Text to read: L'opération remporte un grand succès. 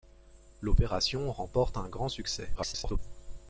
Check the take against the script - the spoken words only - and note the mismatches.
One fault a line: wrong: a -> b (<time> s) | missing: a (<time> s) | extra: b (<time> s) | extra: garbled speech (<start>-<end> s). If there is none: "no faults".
extra: garbled speech (2.5-3.0 s)